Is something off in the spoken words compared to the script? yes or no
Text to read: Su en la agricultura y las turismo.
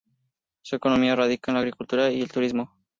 yes